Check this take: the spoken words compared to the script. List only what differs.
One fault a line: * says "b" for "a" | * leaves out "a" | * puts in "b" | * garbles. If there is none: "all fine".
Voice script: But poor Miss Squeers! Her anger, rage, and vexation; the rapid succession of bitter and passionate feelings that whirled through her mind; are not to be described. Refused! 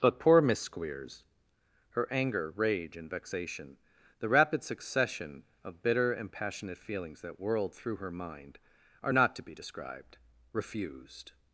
all fine